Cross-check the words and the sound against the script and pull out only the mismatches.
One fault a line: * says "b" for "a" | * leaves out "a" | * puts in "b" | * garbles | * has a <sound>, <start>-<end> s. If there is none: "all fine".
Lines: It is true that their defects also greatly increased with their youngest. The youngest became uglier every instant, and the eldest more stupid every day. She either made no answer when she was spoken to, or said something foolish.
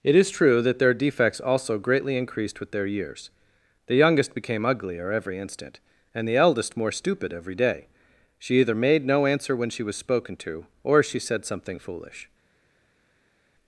* says "years" for "youngest"
* puts in "she"